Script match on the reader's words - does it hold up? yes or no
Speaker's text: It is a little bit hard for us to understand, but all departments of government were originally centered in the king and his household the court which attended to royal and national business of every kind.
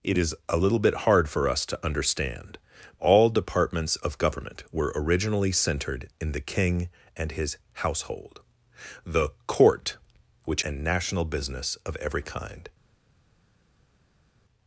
no